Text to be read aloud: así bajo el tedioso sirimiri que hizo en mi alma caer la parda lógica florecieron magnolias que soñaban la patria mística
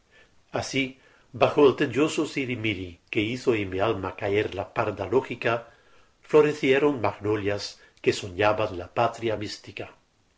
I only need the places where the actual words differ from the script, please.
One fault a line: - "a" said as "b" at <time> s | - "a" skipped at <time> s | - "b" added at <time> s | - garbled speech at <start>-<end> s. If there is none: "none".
none